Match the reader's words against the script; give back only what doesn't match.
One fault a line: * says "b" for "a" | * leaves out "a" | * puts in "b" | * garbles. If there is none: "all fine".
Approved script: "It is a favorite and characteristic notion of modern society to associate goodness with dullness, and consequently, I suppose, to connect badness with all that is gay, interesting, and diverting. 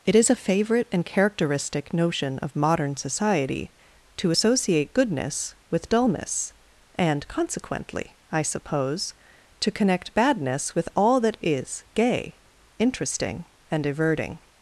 all fine